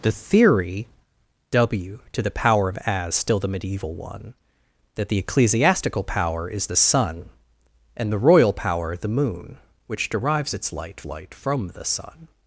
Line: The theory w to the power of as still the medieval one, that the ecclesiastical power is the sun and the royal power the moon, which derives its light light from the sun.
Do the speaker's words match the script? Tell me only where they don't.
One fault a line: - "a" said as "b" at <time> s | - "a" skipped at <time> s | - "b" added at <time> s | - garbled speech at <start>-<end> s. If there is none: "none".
none